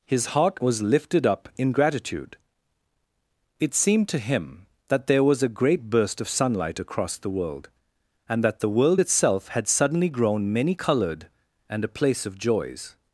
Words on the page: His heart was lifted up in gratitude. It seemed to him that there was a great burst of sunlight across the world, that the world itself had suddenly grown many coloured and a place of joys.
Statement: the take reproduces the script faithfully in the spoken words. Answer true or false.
false